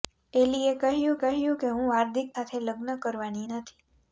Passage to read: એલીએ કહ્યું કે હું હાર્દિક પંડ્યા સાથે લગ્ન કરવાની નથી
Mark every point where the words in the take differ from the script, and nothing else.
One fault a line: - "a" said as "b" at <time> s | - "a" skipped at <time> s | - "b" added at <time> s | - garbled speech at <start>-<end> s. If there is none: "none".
- "કહ્યું" added at 1.2 s
- "પંડ્યા" skipped at 2.3 s